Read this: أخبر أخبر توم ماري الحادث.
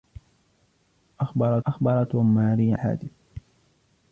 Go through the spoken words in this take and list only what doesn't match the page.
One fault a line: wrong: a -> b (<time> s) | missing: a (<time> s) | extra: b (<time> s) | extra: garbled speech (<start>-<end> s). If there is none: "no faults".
no faults